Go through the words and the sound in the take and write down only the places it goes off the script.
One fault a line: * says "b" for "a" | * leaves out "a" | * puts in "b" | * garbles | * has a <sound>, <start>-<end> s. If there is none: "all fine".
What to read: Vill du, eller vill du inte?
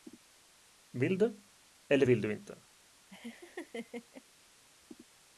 * has a laugh, 3.1-4.2 s